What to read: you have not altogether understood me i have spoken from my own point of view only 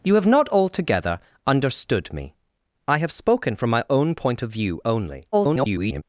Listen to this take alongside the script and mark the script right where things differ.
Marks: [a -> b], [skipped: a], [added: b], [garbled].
you have not altogether understood me i have spoken from my own point of view only [garbled]